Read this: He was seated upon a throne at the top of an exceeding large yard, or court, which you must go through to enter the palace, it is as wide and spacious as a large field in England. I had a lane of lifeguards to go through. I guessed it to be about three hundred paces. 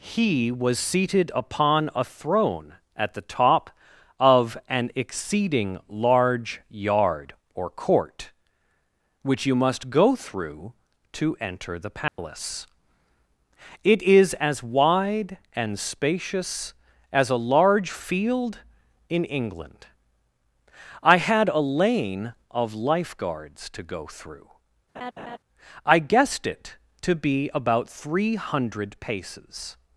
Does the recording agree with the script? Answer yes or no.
yes